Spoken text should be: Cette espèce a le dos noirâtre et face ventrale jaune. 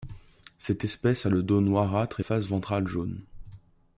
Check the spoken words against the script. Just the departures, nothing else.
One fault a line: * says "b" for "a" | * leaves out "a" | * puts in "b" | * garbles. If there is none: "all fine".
all fine